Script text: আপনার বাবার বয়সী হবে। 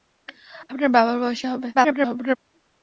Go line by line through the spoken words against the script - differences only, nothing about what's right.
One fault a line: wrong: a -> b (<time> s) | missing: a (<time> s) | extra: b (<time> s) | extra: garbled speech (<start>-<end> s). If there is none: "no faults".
extra: garbled speech (1.7-2.4 s)